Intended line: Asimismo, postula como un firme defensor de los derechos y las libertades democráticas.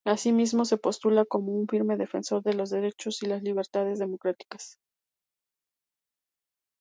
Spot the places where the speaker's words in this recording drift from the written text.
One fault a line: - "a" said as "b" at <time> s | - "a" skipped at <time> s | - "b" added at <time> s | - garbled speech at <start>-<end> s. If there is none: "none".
- "se" added at 0.7 s